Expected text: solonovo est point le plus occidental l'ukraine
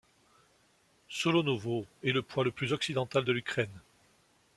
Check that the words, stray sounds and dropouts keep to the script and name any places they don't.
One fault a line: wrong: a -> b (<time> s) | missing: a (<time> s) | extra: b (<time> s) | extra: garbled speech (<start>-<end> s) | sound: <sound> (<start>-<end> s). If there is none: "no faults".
extra: le (2.1 s)
extra: de (3.2 s)